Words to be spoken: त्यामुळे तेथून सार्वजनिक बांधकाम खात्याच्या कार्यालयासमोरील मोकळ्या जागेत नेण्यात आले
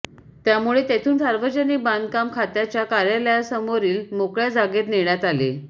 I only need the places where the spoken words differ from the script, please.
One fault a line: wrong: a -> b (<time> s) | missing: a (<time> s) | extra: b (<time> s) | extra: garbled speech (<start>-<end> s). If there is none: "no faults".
no faults